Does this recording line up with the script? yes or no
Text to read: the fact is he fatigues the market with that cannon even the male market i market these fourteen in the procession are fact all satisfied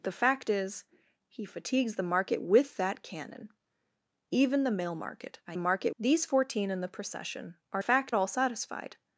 yes